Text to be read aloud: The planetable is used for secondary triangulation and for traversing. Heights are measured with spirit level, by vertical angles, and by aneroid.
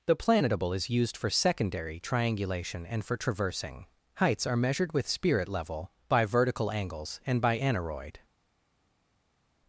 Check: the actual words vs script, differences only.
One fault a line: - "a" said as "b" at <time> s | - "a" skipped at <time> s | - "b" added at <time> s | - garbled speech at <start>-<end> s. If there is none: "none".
none